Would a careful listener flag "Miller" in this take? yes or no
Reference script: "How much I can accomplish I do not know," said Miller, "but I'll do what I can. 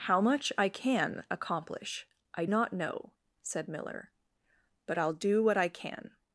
no